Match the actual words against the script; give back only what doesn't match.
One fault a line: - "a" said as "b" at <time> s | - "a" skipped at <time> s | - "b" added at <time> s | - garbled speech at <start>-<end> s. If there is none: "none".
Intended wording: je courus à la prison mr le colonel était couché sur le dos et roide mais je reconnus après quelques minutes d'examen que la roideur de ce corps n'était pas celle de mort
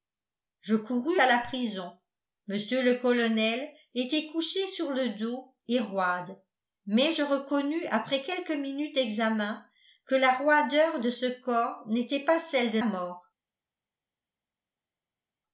none